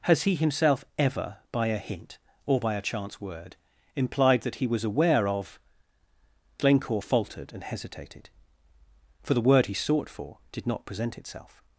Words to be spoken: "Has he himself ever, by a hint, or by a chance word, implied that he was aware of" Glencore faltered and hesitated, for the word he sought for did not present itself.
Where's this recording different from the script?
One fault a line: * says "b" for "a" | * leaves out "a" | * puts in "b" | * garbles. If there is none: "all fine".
all fine